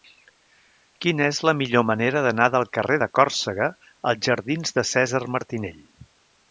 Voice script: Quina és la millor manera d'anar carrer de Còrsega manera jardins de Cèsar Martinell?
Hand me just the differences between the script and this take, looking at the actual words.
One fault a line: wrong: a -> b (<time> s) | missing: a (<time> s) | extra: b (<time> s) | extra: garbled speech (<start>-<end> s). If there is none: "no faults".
extra: del (2.6 s)
wrong: manera -> als (4.1 s)